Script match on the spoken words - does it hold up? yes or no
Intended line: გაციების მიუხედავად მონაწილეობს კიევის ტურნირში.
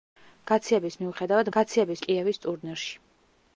no